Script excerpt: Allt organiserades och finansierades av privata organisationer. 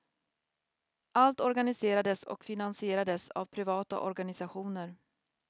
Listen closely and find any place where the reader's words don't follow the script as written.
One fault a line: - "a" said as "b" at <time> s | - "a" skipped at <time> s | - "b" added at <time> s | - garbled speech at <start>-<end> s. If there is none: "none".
none